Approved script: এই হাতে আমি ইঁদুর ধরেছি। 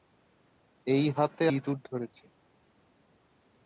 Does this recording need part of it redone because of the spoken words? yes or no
yes